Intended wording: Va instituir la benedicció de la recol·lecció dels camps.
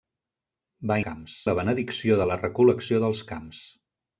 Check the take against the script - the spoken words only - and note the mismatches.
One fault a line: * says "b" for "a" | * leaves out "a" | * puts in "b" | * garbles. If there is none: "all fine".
* says "camps" for "instituir"